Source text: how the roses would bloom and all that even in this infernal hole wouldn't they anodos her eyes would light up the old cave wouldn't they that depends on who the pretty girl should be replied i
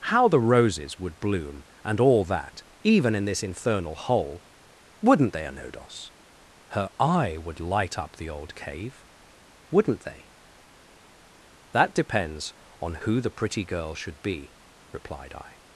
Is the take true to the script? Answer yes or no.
no